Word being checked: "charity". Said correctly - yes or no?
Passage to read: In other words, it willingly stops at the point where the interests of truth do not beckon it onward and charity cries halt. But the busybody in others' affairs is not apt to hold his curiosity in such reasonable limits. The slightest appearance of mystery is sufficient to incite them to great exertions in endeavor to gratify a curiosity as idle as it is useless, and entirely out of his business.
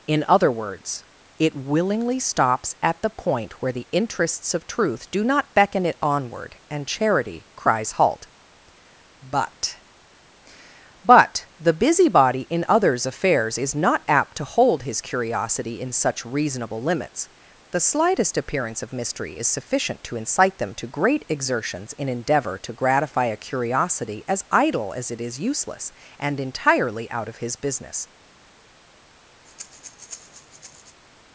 yes